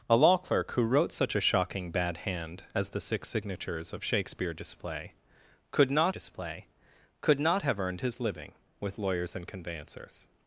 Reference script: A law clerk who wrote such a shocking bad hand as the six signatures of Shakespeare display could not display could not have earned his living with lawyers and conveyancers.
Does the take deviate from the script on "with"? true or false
false